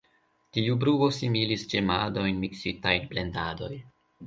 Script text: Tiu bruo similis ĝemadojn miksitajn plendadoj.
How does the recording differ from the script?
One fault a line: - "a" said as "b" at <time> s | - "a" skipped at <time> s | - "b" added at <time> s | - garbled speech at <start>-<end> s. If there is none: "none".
none